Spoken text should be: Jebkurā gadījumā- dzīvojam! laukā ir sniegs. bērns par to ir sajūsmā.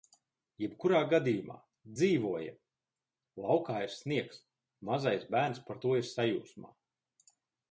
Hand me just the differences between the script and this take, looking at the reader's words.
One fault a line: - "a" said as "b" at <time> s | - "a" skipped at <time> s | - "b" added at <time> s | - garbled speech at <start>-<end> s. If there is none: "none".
- "mazais" added at 4.9 s